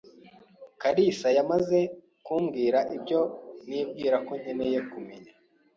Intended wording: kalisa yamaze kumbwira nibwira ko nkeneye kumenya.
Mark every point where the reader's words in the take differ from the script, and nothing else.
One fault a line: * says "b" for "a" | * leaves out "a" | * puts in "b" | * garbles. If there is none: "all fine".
* puts in "ibyo"